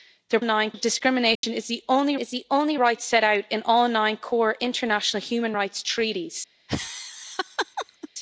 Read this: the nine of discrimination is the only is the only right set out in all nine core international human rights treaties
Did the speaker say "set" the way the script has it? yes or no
yes